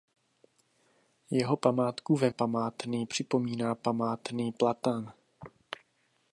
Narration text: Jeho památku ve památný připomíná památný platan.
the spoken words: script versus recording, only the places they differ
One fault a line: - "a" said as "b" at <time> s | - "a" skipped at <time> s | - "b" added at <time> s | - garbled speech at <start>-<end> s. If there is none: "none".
none